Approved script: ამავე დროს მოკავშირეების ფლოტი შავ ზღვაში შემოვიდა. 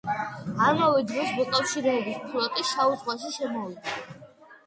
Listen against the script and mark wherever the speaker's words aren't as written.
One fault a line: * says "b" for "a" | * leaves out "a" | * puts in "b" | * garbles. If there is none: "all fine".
all fine